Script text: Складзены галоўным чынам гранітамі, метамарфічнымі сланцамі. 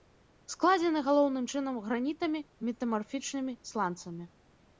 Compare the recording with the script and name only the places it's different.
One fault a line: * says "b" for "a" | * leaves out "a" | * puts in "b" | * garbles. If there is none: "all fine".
all fine